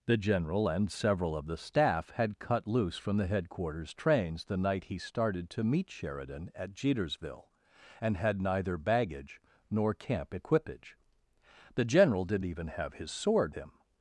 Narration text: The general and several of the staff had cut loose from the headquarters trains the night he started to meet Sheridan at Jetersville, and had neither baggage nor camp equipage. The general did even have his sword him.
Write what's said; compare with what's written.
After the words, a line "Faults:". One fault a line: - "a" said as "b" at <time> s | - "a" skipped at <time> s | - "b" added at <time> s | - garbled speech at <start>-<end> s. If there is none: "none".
The general and several of the staff had cut loose from the headquarters trains the night he started to meet Sheridan at Jetersville, and had neither baggage nor camp equipage. The general did even have his sword him.
Faults:
none